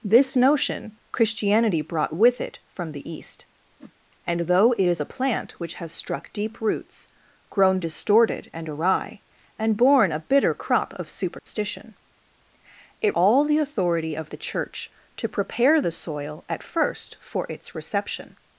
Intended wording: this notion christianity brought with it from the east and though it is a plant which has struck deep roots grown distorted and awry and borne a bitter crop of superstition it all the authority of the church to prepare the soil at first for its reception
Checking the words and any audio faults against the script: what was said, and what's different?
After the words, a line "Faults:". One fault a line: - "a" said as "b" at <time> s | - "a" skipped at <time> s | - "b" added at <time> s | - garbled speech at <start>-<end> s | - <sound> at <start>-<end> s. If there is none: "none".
this notion christianity brought with it from the east and though it is a plant which has struck deep roots grown distorted and awry and borne a bitter crop of superstition it all the authority of the church to prepare the soil at first for its reception
Faults:
- whoosh at 3.8-3.9 s
- dropout at 11.4-11.5 s